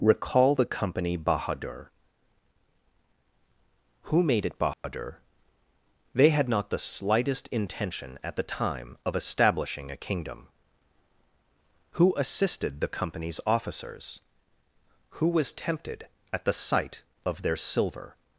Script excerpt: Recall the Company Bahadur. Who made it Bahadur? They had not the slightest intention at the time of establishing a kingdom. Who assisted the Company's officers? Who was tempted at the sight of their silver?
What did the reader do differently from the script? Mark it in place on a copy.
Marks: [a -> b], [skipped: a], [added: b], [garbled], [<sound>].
Recall the Company Bahadur. Who made it Bahadur? [dropout] They had not the slightest intention at the time of establishing a kingdom. Who assisted the Company's officers? Who was tempted at the sight of their silver?